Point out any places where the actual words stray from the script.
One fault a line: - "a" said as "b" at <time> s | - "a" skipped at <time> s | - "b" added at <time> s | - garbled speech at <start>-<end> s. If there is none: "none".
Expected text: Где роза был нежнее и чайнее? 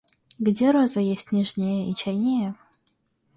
- "был" said as "есть" at 1.0 s